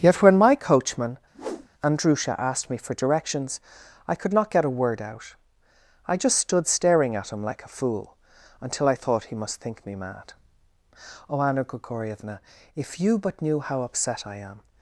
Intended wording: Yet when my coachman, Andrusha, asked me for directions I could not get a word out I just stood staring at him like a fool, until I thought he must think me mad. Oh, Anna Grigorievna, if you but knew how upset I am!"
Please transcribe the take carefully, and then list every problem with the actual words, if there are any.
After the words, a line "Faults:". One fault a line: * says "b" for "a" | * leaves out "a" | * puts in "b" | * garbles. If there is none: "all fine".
Yet when my coachman, Andrusha, asked me for directions I could not get a word out I just stood staring at him like a fool, until I thought he must think me mad. Oh, Anna Grigorievna, if you but knew how upset I am!"
Faults:
all fine